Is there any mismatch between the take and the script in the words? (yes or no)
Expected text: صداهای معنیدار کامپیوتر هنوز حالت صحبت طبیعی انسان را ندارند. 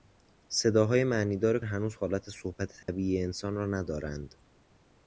yes